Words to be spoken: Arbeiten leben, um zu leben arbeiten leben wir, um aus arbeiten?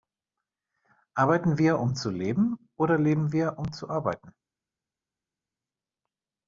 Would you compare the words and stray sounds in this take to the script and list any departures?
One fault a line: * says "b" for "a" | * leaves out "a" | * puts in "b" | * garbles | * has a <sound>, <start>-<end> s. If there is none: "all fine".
* says "wir" for "leben"
* says "oder" for "arbeiten"
* says "zu" for "aus"